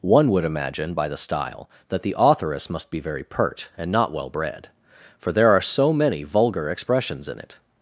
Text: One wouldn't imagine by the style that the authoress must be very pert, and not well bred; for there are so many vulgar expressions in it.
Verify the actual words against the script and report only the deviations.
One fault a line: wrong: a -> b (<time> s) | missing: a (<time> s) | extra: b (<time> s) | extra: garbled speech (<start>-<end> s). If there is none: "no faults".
wrong: wouldn't -> would (0.3 s)